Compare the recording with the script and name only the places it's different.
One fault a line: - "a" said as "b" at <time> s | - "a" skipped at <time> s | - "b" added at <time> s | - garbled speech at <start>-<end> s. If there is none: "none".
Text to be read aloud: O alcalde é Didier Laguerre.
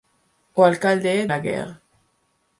- "Didier" skipped at 1.3 s